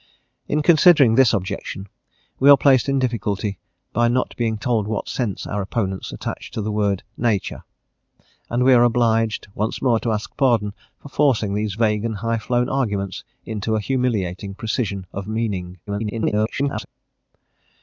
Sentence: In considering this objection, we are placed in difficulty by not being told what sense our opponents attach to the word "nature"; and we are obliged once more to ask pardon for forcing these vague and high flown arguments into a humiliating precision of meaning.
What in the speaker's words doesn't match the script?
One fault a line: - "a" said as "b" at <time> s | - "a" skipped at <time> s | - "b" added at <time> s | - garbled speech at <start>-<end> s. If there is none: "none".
- garbled speech at 15.9-16.9 s